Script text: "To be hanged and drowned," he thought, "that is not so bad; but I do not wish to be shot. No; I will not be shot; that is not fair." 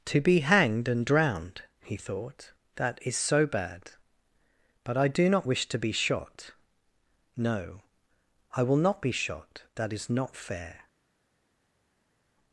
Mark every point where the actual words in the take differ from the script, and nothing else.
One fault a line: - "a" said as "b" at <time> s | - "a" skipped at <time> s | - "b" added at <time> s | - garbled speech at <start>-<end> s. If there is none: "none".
- "not" skipped at 3.2 s